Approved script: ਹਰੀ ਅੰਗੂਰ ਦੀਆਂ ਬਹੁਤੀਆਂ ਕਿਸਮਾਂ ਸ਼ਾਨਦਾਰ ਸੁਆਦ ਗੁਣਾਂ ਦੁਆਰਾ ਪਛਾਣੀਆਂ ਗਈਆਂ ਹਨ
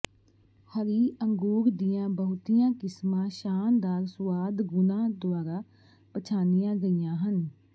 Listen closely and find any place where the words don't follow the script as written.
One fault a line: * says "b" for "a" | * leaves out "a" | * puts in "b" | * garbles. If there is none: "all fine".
all fine